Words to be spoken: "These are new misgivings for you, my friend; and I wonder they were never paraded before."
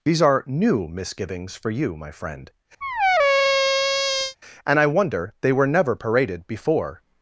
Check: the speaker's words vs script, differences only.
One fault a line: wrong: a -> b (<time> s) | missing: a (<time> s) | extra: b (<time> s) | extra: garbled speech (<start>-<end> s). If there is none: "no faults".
no faults